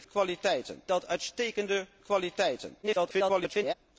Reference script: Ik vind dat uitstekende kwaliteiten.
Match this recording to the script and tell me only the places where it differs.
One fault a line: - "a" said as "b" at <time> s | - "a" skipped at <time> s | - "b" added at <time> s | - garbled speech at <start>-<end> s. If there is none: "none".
- "vind" said as "kwaliteiten" at 0.1 s
- garbled speech at 2.8-3.7 s